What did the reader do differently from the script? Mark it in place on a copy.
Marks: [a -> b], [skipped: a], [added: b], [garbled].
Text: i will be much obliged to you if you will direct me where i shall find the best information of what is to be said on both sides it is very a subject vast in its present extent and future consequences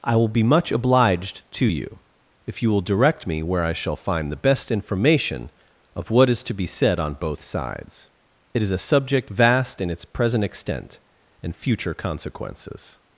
i will be much obliged to you if you will direct me where i shall find the best information of what is to be said on both sides it is [skipped: very] a subject vast in its present extent and future consequences